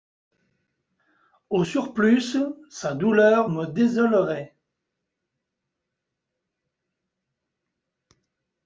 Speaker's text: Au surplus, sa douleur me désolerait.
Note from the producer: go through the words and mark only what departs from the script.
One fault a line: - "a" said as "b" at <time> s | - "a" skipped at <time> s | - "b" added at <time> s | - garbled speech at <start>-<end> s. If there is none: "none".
none